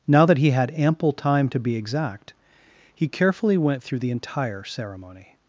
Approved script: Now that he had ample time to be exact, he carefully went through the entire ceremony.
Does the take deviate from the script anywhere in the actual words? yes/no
no